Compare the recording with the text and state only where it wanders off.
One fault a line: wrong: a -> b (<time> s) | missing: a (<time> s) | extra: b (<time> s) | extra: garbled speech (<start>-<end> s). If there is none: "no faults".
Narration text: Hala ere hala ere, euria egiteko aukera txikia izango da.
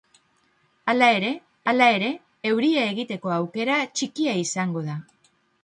no faults